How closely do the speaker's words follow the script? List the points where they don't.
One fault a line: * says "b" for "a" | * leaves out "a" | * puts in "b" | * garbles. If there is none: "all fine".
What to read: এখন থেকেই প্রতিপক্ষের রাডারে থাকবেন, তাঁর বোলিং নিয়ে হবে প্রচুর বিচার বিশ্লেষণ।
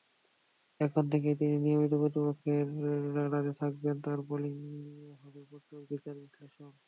* puts in "তিনি নিয়মিত"